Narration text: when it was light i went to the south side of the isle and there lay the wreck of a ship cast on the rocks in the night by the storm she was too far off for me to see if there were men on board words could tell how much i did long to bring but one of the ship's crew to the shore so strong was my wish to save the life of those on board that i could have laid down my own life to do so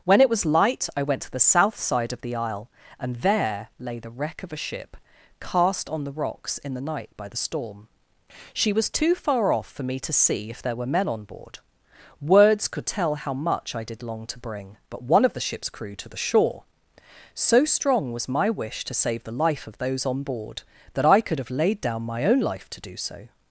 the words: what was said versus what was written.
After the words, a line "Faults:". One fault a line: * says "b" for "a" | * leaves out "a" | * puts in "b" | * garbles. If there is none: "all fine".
when it was light i went to the south side of the isle and there lay the wreck of a ship cast on the rocks in the night by the storm she was too far off for me to see if there were men on board words could tell how much i did long to bring but one of the ship's crew to the shore so strong was my wish to save the life of those on board that i could have laid down my own life to do so
Faults:
all fine